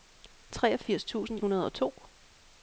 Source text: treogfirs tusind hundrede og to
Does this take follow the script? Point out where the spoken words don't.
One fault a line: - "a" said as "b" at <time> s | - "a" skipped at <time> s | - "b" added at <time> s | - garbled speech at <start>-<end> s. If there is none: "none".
none